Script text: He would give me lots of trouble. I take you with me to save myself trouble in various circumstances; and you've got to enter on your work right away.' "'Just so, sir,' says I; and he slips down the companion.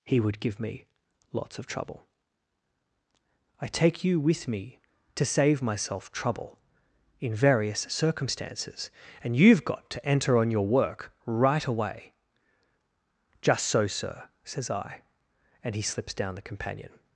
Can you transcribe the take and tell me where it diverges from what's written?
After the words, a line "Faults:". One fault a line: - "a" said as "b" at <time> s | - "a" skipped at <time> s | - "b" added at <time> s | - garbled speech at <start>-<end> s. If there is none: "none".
He would give me lots of trouble. I take you with me to save myself trouble in various circumstances; and you've got to enter on your work right away.' "'Just so, sir,' says I; and he slips down the companion.
Faults:
none